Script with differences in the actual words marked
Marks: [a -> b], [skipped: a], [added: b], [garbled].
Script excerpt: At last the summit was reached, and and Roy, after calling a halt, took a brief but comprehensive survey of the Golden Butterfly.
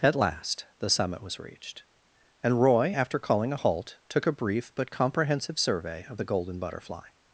At last the summit was reached, and [skipped: and] Roy, after calling a halt, took a brief but comprehensive survey of the Golden Butterfly.